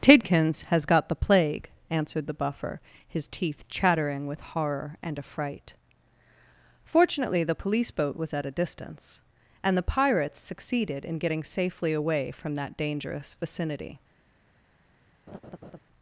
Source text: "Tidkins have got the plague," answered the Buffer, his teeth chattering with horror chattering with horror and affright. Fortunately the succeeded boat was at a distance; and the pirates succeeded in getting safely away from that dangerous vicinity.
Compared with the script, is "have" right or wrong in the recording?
wrong